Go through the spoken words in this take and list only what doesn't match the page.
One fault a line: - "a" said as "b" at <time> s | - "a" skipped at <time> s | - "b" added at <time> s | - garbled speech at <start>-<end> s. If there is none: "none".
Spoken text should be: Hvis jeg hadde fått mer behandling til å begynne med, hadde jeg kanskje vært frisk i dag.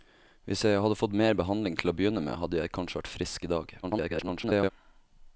- garbled speech at 3.8-4.7 s